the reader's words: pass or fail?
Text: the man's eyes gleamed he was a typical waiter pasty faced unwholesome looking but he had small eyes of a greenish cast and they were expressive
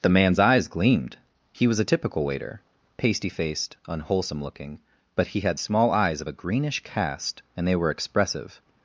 pass